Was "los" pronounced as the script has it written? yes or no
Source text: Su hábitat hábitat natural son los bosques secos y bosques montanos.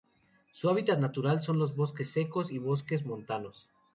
yes